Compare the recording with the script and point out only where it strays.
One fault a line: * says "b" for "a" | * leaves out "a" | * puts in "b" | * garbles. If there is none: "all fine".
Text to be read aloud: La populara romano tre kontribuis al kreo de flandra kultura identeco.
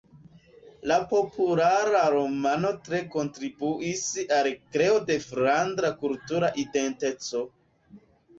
all fine